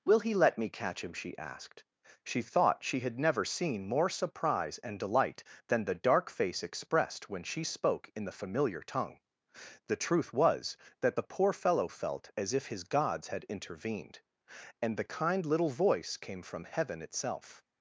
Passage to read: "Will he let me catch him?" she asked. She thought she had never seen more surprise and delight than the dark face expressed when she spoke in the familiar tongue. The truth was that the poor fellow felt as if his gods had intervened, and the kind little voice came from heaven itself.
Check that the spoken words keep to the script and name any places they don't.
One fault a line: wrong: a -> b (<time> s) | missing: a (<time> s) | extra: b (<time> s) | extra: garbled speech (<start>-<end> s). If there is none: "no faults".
no faults